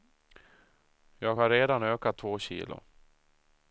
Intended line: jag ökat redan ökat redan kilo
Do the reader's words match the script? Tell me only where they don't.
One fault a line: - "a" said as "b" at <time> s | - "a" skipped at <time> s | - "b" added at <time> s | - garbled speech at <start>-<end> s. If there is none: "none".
- "ökat" said as "har" at 1.3 s
- "redan" said as "två" at 2.2 s